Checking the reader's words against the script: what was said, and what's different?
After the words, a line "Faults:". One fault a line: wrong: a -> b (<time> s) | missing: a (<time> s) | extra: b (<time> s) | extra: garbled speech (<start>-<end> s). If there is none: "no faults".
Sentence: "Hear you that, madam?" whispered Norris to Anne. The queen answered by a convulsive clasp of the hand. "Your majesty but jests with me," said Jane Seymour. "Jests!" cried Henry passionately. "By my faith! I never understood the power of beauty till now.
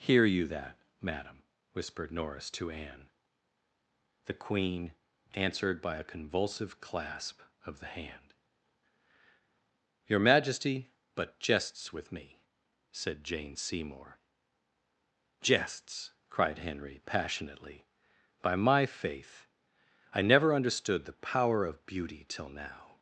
"Hear you that, madam?" whispered Norris to Anne. The queen answered by a convulsive clasp of the hand. "Your majesty but jests with me," said Jane Seymour. "Jests!" cried Henry passionately. "By my faith! I never understood the power of beauty till now.
Faults:
no faults